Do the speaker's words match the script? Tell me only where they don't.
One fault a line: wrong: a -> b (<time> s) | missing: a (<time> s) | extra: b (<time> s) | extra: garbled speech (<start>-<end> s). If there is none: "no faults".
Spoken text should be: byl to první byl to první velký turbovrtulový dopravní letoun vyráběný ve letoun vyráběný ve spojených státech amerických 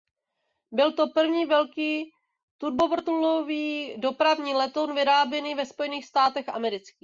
missing: byl to první (1.4 s)
missing: letoun vyráběný ve (5.7 s)